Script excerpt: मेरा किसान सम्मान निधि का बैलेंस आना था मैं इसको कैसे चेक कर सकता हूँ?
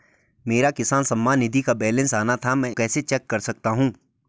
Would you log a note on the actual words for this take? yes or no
yes